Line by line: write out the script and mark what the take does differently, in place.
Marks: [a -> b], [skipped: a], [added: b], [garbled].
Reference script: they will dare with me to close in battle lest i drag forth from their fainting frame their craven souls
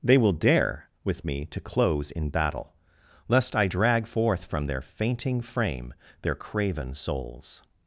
they will dare with me to close in battle lest i drag forth from their fainting frame their craven souls